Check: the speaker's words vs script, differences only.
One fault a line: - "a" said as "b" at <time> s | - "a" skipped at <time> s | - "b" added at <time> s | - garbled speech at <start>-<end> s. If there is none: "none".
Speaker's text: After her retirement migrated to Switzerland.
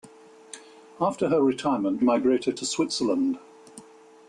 none